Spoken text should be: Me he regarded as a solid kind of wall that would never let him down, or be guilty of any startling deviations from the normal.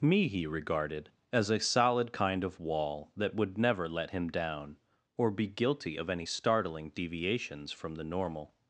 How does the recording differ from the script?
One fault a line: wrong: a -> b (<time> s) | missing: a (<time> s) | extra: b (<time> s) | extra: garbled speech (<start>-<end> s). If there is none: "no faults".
no faults